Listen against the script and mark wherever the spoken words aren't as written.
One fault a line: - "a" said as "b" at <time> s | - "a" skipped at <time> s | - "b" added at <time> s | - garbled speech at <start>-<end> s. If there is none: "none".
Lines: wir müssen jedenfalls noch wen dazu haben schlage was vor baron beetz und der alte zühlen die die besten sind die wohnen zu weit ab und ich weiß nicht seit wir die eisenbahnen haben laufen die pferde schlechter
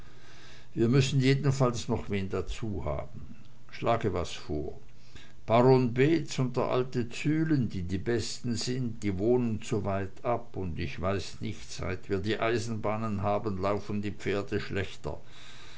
none